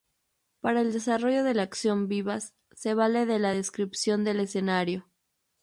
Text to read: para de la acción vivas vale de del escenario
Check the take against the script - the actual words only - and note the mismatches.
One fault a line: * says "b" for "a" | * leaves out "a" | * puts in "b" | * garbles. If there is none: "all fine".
* puts in "el desarrollo"
* puts in "se"
* puts in "la descripción"